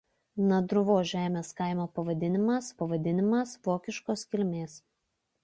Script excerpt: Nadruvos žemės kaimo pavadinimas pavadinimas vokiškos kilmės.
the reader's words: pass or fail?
pass